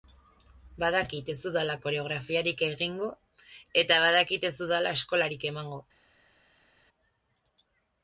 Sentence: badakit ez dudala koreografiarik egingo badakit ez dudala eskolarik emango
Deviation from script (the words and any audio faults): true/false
true